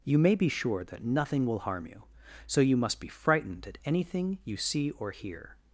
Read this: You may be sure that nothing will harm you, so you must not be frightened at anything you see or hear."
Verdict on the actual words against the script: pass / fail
fail